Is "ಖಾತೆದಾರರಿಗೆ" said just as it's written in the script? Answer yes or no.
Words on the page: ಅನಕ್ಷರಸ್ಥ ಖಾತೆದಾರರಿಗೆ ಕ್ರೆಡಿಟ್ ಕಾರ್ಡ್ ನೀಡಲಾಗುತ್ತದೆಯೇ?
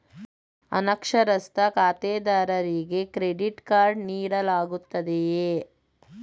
yes